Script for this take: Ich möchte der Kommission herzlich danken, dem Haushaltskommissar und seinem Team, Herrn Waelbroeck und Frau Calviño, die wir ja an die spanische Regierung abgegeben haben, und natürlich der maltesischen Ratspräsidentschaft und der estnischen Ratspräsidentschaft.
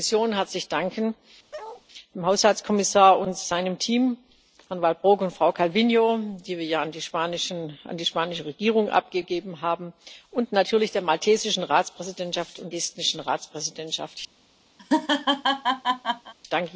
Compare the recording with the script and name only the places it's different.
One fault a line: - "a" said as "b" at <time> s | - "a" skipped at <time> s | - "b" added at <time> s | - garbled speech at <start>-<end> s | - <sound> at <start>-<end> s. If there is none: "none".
- bark at 1.5-1.8 s
- "der" skipped at 12.7 s
- laugh at 14.8-16.3 s